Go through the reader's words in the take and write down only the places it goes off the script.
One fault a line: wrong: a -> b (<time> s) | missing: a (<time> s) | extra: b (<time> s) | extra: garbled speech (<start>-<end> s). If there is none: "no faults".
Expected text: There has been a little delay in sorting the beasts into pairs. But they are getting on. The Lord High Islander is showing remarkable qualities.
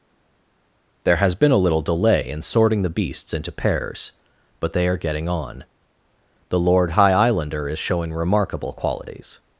no faults